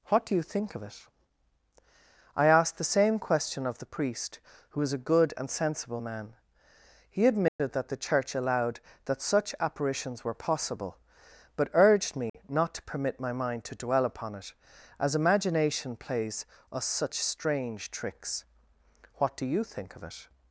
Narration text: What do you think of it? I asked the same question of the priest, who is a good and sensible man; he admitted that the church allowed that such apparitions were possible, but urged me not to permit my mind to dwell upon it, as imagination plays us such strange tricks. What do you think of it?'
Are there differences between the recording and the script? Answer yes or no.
yes